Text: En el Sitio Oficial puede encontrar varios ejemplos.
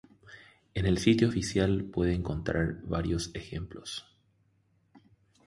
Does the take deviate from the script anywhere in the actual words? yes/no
no